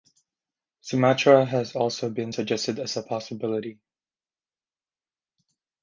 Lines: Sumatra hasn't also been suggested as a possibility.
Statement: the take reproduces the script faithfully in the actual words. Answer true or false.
false